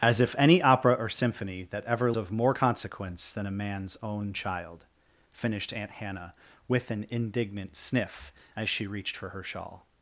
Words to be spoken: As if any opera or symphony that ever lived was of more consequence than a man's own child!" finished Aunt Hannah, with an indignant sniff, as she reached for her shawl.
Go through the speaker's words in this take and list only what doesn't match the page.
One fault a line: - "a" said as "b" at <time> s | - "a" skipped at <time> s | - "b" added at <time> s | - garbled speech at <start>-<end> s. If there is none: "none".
- "lived was" skipped at 2.1 s